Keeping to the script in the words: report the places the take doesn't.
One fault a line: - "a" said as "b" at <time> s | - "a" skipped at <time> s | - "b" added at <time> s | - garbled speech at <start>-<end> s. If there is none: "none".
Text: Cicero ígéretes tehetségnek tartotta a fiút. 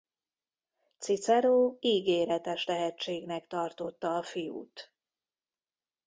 none